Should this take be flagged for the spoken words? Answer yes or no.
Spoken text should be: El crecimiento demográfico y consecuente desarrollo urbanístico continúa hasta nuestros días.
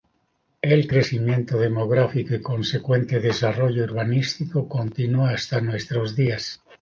no